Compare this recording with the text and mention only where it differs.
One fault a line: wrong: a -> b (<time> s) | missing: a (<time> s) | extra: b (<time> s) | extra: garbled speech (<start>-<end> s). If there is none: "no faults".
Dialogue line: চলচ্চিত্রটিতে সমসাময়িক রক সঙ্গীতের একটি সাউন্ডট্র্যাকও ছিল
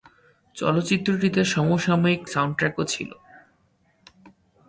missing: রক সঙ্গীতের একটি (2.2 s)